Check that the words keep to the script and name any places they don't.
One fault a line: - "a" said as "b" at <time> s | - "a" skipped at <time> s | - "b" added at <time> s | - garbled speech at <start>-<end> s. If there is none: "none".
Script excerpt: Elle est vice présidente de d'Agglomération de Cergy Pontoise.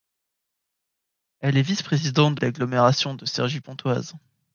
none